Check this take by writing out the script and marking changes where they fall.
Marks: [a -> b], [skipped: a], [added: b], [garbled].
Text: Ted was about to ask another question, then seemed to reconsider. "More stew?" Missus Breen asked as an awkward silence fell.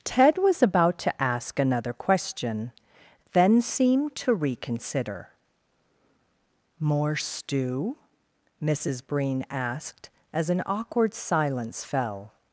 Ted was about to ask another question, then seemed to reconsider. "More stew?" Missus Breen asked as an awkward silence fell.